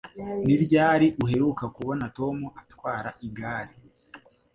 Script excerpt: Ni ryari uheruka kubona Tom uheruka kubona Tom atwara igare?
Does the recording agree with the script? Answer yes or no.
no